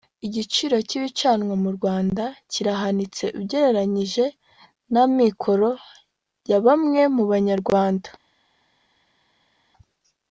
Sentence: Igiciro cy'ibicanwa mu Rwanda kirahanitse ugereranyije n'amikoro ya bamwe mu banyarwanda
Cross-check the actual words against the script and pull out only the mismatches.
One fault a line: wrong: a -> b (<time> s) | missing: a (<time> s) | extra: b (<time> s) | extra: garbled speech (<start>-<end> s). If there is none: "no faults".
no faults